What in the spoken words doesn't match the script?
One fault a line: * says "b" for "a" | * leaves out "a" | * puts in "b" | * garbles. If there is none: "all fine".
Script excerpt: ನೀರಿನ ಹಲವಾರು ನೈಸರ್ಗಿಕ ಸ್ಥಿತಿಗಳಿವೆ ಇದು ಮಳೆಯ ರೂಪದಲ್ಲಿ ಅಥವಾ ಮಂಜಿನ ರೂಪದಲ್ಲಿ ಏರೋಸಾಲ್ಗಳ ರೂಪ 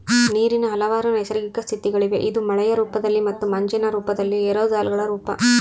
* says "ಮತ್ತು" for "ಅಥವಾ"